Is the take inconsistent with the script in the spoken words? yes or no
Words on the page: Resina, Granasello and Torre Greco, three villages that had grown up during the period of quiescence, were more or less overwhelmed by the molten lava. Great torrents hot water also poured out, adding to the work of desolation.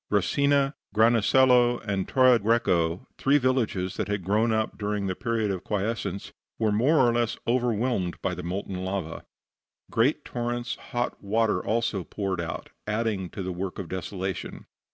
no